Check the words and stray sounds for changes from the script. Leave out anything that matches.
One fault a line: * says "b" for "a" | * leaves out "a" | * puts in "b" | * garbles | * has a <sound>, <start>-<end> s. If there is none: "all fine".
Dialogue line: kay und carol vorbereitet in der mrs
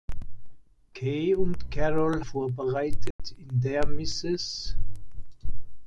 * has a dropout, 3.1-3.2 s